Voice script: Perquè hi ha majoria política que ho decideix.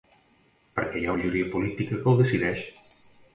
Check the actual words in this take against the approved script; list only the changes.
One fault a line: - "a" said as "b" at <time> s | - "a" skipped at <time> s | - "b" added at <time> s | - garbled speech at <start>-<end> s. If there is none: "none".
none